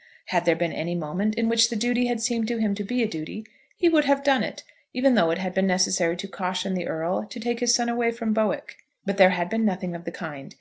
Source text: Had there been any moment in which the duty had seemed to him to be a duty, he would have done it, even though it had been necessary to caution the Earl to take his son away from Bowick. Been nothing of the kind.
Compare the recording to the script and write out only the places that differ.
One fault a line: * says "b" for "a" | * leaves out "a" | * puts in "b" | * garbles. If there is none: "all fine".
* puts in "But there had"